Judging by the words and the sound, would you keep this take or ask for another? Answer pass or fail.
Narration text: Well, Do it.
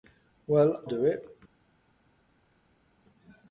pass